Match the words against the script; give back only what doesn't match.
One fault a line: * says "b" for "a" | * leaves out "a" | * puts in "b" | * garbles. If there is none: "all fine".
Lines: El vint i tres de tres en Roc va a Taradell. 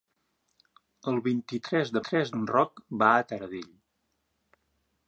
all fine